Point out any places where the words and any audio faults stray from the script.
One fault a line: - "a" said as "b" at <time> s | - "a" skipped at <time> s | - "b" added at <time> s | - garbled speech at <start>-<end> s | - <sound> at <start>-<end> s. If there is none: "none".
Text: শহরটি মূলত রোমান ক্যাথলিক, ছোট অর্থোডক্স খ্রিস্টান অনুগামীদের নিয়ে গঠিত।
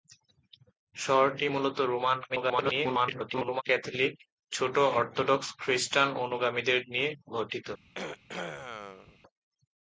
- garbled speech at 2.3-3.6 s
- throat clearing at 7.8-9.2 s